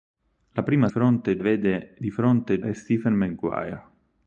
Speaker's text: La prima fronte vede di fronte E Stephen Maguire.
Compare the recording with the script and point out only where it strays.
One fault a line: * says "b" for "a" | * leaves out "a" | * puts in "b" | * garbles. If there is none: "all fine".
all fine